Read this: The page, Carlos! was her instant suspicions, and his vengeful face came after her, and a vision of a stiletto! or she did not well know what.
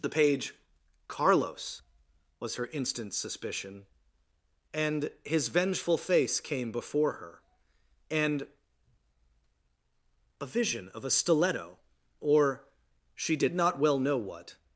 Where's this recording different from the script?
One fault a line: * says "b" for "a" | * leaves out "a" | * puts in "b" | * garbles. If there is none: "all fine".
* says "suspicion" for "suspicions"
* says "before" for "after"